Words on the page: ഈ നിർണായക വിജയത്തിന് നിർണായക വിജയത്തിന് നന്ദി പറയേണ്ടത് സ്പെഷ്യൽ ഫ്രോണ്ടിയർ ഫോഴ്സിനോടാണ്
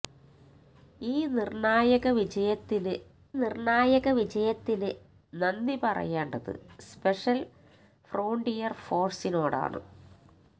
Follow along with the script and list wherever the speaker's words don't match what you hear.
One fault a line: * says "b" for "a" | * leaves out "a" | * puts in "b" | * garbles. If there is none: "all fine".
all fine